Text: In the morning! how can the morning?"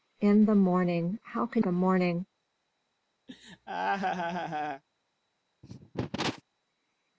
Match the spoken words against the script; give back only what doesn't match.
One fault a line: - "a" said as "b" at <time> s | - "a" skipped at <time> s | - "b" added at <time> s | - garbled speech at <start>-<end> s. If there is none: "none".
none